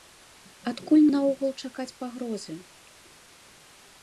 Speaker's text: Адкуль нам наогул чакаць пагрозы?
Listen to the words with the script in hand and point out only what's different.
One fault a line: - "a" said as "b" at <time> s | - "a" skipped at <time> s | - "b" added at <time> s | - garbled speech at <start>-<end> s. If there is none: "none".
- "нам" skipped at 1.0 s